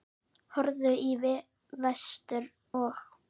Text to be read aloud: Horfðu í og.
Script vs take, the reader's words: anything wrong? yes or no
yes